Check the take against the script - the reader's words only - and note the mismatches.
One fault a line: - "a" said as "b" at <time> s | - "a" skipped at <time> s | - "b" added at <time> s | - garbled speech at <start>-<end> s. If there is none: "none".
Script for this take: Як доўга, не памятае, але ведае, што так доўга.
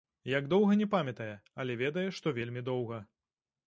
- "так" said as "вельмі" at 2.4 s